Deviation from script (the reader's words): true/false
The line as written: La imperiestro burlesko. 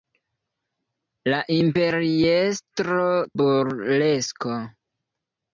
false